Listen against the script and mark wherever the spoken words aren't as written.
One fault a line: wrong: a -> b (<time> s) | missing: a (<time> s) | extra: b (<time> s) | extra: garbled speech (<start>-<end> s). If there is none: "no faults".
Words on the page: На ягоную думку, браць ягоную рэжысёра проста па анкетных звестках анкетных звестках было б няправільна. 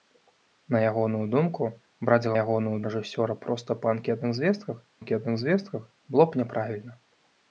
no faults